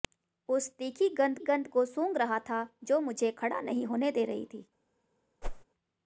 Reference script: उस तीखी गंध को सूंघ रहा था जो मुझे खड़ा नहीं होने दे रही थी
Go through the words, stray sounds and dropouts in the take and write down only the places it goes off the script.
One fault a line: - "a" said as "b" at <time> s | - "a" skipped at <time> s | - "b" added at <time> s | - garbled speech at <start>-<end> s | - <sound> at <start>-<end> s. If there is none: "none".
- "गंध" added at 1.4 s
- whoosh at 5.4-5.6 s